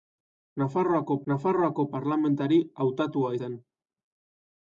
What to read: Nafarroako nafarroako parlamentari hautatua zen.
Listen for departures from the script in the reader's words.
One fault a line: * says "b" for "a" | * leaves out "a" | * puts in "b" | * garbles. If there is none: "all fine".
all fine